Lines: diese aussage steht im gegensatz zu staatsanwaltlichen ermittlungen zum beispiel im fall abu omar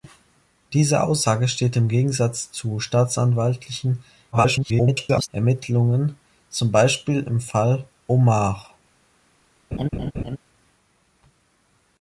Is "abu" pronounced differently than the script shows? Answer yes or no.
yes